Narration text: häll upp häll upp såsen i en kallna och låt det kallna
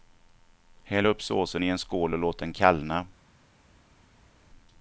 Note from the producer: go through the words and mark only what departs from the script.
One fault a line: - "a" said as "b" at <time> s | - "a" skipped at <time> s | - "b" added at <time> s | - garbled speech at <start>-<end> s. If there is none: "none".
- "häll upp" skipped at 1.2 s
- "kallna" said as "skål" at 1.8 s
- "det" said as "den" at 2.4 s